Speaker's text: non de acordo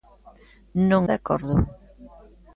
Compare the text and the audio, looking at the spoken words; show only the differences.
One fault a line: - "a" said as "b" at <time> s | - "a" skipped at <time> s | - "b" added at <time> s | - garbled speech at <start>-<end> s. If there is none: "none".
none